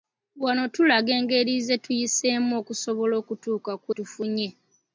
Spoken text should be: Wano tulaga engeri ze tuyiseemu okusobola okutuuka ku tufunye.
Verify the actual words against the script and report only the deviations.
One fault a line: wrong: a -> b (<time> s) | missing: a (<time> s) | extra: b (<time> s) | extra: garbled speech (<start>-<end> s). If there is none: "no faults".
no faults